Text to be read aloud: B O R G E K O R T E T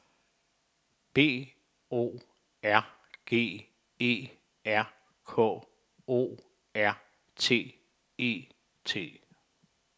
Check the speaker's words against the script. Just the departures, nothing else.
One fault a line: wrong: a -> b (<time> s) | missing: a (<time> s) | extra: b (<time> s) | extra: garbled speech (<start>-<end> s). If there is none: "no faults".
extra: R (4.7 s)